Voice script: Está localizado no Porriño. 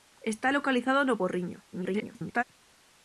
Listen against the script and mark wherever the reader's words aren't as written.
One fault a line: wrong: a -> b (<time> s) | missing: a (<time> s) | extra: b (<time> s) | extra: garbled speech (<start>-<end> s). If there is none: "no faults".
extra: garbled speech (1.7-2.4 s)